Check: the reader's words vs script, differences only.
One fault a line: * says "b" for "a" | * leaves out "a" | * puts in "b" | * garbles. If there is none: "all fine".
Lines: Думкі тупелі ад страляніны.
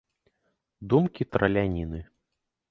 * leaves out "тупелі ад"